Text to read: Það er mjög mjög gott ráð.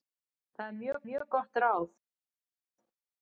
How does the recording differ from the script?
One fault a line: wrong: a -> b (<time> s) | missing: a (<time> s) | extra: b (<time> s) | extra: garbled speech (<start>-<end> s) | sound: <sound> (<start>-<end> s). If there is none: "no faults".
no faults